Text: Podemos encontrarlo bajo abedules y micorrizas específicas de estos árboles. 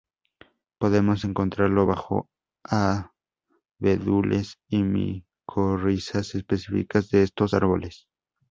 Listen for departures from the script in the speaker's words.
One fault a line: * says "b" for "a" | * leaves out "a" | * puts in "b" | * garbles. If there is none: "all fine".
all fine